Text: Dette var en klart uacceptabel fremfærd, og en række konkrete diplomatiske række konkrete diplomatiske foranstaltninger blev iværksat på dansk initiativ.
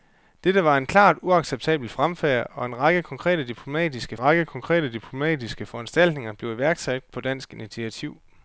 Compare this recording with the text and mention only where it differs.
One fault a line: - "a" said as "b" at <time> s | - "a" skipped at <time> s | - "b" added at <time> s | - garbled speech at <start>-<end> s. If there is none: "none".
none